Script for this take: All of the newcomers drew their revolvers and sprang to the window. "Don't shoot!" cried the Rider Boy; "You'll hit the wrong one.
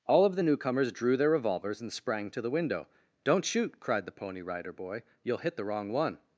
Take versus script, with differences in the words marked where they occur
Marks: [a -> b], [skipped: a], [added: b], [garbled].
All of the newcomers drew their revolvers and sprang to the window. "Don't shoot!" cried the [added: Pony] Rider Boy; "You'll hit the wrong one.